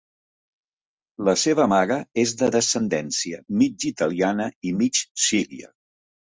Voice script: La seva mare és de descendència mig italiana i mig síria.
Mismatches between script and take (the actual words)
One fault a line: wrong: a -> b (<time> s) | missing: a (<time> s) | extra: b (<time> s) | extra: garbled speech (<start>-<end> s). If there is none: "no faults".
no faults